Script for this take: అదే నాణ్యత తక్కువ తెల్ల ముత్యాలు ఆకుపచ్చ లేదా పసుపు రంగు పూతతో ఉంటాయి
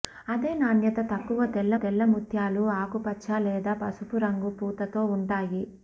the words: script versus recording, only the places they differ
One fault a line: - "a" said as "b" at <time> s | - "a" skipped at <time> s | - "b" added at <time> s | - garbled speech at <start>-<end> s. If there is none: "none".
- "తెల్ల" added at 1.8 s